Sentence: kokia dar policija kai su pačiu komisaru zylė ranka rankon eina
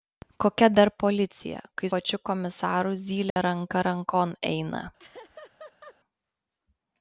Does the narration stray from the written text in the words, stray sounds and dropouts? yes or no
yes